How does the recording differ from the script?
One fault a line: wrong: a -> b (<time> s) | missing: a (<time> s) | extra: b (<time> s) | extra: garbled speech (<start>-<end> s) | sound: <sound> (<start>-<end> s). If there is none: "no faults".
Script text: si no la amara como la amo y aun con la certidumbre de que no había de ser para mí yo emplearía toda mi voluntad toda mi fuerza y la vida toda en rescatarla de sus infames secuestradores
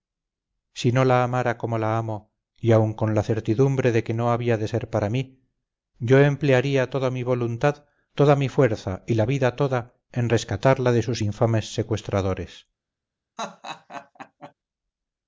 sound: laugh (13.4-14.5 s)